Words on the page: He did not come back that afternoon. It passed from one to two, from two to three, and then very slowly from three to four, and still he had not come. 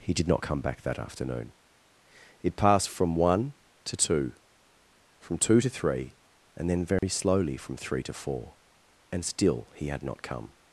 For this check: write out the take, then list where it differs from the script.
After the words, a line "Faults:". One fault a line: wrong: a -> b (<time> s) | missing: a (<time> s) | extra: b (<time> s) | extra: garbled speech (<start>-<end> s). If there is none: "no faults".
He did not come back that afternoon. It passed from one to two, from two to three, and then very slowly from three to four, and still he had not come.
Faults:
no faults